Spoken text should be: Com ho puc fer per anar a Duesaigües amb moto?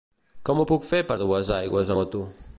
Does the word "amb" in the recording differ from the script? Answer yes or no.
yes